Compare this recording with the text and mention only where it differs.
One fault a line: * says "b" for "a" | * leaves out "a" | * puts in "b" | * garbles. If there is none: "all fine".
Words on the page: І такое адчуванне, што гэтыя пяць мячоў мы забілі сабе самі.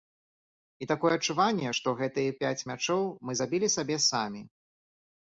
all fine